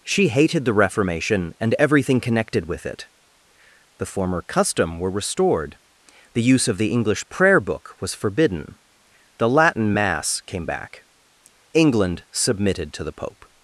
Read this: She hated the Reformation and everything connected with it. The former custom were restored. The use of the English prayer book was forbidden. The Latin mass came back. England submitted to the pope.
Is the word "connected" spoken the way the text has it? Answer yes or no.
yes